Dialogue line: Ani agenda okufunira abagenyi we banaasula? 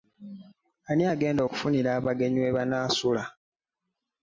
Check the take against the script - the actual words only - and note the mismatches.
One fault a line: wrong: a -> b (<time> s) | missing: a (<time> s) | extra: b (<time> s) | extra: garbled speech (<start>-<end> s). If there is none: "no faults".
no faults